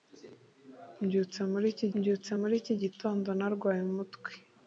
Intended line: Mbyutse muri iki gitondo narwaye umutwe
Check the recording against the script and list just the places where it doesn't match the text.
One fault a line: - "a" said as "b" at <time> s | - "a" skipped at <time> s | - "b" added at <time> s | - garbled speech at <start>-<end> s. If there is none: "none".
- "mbyutse muri iki" added at 2.0 s